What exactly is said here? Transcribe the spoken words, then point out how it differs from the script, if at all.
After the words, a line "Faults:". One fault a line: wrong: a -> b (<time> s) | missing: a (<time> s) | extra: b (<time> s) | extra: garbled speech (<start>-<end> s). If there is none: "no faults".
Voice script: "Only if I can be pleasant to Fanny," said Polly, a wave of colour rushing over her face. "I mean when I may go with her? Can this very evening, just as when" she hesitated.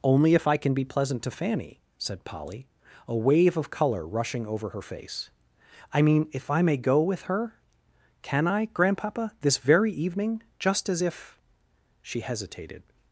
"Only if I can be pleasant to Fanny," said Polly, a wave of colour rushing over her face. "I mean if I may go with her? Can I, Grandpapa, this very evening, just as if" she hesitated.
Faults:
wrong: when -> if (6.3 s)
extra: I Grandpapa (8.4 s)
wrong: when -> if (11.0 s)